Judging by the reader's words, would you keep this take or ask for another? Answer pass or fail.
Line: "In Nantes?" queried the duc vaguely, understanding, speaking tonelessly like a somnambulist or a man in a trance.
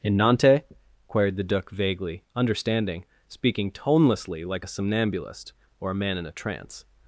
pass